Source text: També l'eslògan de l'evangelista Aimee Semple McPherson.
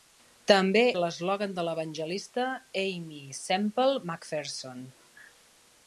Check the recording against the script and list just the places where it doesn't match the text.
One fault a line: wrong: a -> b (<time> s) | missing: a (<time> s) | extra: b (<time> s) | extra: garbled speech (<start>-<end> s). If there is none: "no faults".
no faults